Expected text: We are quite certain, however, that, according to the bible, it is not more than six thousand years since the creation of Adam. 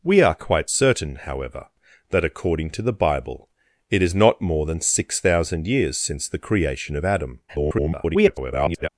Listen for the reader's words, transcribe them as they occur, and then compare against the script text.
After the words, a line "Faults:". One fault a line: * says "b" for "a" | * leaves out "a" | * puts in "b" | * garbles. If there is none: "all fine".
We are quite certain, however, that, according to the bible, it is not more than six thousand years since the creation of Adam. [garbled]
Faults:
* garbles